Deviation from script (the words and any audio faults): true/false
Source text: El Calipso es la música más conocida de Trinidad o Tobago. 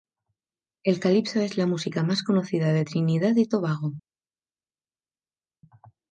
true